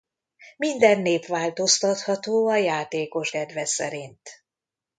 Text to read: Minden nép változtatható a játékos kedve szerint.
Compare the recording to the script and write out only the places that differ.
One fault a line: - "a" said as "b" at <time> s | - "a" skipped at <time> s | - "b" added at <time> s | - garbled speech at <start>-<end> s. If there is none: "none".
none